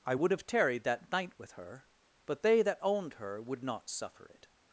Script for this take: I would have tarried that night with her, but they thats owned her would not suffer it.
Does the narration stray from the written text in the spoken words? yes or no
yes